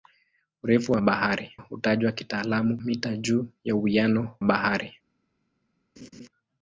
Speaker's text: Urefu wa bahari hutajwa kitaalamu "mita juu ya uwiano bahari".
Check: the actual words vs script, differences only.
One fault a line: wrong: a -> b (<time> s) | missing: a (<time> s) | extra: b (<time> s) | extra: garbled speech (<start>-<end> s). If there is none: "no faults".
no faults